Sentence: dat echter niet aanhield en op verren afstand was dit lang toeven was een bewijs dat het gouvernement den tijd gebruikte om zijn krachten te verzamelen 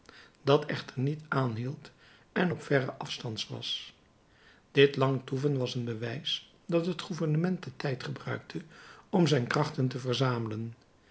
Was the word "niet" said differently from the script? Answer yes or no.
no